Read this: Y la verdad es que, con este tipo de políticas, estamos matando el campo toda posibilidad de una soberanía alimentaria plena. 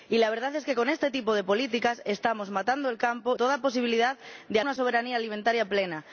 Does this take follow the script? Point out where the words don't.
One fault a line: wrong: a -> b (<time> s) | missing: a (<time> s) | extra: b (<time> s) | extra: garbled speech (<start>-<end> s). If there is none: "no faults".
no faults